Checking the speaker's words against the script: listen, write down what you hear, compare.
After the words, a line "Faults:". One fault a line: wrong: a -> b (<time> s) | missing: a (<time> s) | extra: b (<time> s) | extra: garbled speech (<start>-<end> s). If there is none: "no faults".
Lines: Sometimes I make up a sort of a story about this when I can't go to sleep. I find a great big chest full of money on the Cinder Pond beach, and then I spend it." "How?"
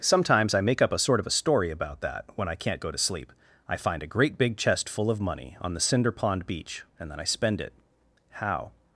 Sometimes I make up a sort of a story about that when I can't go to sleep. I find a great big chest full of money on the Cinder Pond beach, and then I spend it." "How?"
Faults:
wrong: this -> that (2.0 s)